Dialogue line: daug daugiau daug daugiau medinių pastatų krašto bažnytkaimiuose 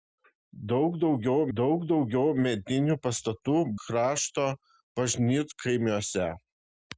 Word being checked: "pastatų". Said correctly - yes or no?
yes